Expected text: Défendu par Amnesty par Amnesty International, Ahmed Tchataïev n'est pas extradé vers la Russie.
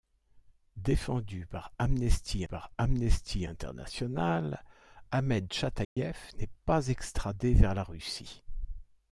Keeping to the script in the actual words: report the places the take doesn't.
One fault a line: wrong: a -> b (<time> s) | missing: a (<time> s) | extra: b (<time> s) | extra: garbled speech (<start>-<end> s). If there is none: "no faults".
no faults